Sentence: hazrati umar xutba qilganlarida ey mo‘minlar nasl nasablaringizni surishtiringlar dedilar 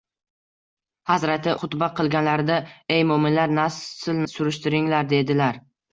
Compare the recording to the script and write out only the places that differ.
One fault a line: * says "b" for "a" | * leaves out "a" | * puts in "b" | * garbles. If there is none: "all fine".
* leaves out "umar"
* leaves out "nasablaringizni"